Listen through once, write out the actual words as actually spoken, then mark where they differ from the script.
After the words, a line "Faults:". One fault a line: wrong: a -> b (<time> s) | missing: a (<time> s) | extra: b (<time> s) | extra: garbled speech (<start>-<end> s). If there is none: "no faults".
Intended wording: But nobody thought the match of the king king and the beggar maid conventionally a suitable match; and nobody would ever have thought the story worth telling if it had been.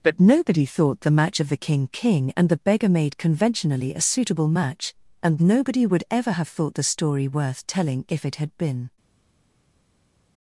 But nobody thought the match of the king king and the beggar maid conventionally a suitable match; and nobody would ever have thought the story worth telling if it had been.
Faults:
no faults